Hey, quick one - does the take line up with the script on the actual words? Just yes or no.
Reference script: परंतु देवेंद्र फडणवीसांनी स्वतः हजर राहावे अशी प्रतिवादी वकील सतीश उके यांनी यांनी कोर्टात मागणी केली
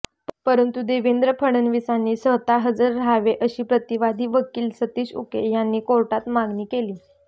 no